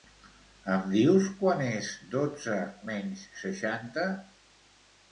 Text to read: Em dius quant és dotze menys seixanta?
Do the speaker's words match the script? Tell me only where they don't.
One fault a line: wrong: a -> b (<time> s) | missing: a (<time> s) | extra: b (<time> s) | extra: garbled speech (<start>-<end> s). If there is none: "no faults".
no faults